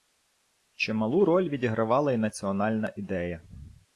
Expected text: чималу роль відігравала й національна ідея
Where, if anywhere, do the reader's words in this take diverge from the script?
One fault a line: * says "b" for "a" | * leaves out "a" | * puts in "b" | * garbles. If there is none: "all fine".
all fine